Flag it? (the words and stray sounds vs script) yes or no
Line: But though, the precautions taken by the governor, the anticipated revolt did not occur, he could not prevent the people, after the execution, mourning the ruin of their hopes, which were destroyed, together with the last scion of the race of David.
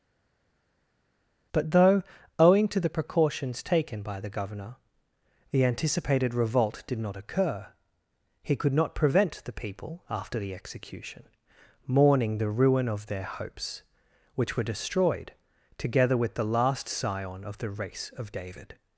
yes